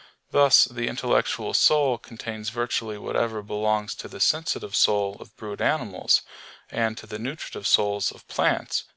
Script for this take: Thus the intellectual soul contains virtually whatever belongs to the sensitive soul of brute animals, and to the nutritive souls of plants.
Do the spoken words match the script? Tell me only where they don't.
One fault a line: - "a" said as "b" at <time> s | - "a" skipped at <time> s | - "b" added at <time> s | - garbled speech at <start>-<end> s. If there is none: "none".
none